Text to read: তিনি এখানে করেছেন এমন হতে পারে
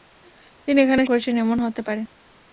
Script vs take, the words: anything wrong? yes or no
no